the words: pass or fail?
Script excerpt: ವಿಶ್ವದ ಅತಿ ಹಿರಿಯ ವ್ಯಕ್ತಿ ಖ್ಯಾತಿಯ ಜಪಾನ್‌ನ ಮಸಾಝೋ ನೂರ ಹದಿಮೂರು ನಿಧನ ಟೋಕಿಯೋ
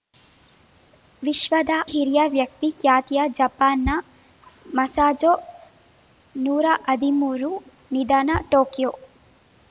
fail